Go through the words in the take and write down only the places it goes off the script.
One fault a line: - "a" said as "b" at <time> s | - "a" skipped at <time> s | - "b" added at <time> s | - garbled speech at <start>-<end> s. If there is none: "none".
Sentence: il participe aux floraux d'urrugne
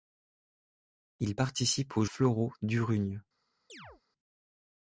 none